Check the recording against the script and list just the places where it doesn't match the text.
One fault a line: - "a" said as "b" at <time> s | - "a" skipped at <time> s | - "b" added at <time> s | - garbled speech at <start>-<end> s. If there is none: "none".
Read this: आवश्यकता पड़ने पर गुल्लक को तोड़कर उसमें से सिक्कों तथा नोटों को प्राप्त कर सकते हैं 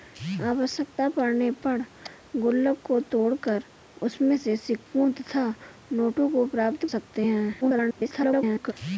- "कर" skipped at 6.8 s
- garbled speech at 7.6-8.7 s